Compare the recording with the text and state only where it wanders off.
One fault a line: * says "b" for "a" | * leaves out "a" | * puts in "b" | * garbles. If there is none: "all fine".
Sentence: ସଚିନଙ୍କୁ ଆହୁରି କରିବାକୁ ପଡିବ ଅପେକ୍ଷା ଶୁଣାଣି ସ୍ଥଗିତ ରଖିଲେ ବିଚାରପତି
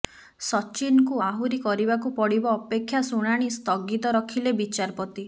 all fine